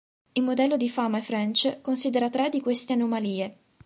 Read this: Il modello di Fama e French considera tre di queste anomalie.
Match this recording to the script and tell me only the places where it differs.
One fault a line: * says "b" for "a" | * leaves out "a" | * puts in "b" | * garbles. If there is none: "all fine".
all fine